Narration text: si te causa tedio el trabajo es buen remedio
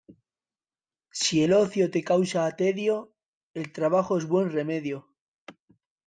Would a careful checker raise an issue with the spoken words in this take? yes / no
yes